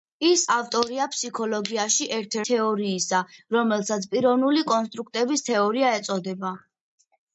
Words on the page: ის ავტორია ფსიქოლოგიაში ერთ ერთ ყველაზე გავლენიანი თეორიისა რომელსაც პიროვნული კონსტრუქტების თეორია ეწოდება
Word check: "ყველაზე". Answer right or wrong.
wrong